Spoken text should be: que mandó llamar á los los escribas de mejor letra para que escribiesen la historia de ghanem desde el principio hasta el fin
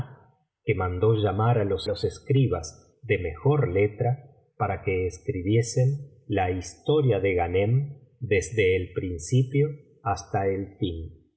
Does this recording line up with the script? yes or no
yes